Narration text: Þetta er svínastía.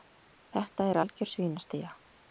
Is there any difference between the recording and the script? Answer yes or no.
yes